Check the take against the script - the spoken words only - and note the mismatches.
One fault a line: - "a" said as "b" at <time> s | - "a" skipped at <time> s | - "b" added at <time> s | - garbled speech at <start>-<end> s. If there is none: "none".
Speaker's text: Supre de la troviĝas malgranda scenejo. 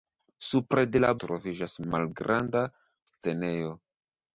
none